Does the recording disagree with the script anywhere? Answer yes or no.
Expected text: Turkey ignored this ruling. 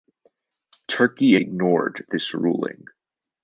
no